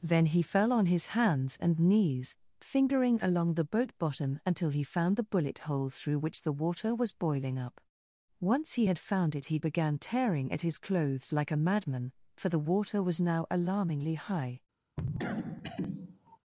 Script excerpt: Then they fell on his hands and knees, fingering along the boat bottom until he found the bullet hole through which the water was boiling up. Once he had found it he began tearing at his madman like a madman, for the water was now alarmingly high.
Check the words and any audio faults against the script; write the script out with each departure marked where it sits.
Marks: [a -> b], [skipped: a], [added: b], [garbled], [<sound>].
Then [they -> he] fell on his hands and knees, fingering along the boat bottom until he found the bullet hole through which the water was boiling up. Once he had found it he began tearing at his [madman -> clothes] like a madman, for the water was now alarmingly high. [cough]